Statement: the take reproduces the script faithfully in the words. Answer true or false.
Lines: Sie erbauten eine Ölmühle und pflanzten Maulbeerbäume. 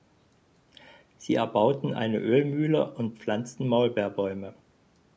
true